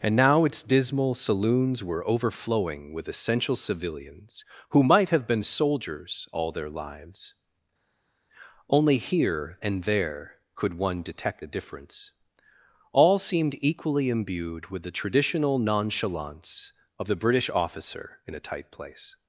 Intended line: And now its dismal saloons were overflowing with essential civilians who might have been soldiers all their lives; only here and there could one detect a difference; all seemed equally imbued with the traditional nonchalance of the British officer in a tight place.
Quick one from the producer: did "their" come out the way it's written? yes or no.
yes